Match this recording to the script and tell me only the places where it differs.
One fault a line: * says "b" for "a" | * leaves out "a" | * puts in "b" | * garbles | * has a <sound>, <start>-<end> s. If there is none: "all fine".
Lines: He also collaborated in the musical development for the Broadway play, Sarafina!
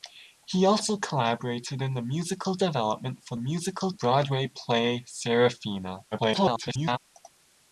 * says "musical" for "the"
* garbles